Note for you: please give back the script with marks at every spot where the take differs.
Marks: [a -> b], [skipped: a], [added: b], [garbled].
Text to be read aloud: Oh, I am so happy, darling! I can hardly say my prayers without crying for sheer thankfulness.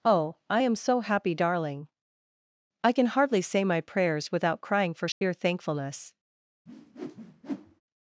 Oh, I am so happy, darling! I can hardly say my prayers without crying for sheer thankfulness.